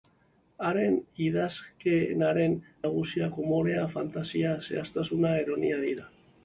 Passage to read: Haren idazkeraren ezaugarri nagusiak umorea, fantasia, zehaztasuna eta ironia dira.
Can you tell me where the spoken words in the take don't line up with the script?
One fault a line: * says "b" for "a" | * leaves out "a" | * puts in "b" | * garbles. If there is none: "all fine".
* leaves out "ezaugarri"
* leaves out "eta"